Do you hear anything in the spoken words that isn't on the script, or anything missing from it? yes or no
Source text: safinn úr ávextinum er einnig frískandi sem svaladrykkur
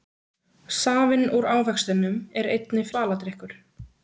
yes